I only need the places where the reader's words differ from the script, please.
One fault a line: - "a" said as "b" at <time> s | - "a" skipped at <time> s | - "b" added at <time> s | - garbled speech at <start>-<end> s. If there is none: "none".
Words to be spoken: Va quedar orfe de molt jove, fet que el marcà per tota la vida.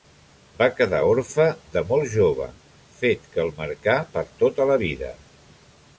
none